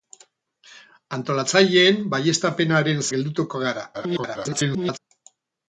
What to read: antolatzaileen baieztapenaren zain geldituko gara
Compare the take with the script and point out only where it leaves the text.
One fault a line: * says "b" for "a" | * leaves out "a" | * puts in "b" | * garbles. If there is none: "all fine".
* leaves out "zain"
* garbles